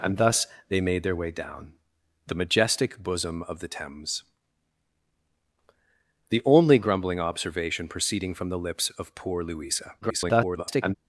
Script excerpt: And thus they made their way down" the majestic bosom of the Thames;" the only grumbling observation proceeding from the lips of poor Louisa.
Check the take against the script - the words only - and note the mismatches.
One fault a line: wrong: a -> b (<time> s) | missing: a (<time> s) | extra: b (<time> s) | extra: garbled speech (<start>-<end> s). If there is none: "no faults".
extra: garbled speech (10.0-11.0 s)